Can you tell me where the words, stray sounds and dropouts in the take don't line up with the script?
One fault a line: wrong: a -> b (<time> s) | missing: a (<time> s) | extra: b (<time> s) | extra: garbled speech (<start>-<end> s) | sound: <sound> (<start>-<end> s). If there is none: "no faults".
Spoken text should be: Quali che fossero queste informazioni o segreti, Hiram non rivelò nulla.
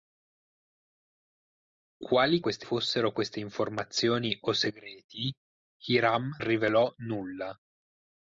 wrong: che -> queste (2.4 s)
missing: non (6.3 s)